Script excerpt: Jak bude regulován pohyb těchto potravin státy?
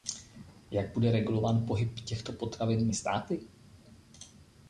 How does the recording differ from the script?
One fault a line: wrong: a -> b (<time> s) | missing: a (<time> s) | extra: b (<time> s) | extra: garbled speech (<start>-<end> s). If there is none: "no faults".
no faults